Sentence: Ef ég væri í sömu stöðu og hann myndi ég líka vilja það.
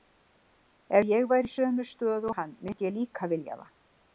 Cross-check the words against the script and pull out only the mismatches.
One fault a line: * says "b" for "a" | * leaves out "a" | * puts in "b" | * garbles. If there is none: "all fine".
all fine